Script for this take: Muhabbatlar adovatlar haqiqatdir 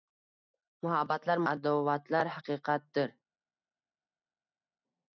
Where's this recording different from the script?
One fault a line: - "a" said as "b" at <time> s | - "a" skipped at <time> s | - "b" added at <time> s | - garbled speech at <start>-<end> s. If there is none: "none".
none